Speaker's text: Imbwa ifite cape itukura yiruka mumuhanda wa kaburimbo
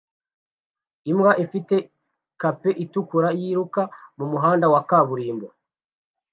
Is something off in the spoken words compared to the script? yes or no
no